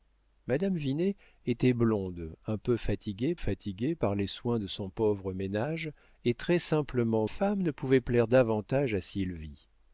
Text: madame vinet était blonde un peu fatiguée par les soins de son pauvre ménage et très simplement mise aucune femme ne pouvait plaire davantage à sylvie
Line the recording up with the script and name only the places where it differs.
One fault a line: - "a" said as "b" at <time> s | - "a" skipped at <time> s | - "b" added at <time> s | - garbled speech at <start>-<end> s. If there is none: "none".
- "fatiguée" added at 3.4 s
- "mise aucune" skipped at 7.3 s